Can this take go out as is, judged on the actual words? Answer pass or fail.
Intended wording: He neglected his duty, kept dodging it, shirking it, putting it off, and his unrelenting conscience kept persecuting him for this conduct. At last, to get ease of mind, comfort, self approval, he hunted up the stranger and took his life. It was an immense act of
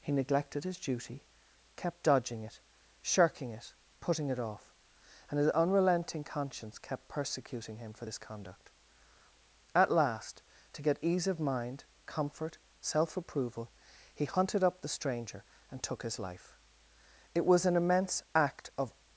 pass